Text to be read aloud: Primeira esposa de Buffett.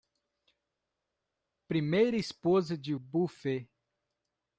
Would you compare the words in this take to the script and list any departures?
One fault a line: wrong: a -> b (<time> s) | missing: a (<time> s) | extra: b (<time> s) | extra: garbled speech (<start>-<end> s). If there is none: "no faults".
no faults